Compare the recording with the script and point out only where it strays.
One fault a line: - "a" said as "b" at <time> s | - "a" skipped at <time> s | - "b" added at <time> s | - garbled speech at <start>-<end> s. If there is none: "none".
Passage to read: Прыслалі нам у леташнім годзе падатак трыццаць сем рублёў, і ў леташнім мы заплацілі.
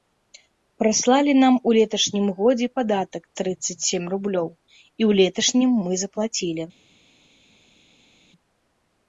none